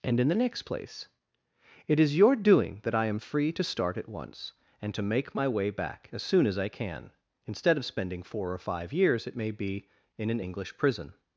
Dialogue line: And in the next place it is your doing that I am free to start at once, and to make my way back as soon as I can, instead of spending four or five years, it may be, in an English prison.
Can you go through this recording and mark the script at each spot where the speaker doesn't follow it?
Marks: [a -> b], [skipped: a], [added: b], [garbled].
And in the next place it is your doing that I am free to start at once, and to make my way back as soon as I can, instead of spending four or five years, it may be, in an English prison.